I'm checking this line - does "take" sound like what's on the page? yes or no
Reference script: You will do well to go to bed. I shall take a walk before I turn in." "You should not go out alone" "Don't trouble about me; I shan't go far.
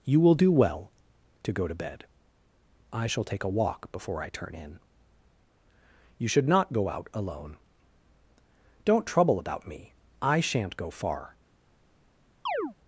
yes